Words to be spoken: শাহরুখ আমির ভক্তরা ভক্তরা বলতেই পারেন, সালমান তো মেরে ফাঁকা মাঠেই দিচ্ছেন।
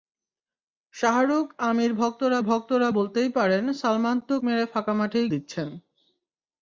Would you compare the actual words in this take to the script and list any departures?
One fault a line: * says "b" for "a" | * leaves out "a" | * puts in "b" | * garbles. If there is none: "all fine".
all fine